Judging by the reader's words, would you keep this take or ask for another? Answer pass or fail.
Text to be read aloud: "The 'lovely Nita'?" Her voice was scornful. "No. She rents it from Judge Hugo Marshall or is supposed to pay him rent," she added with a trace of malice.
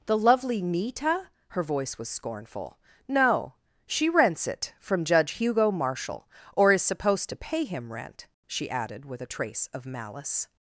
pass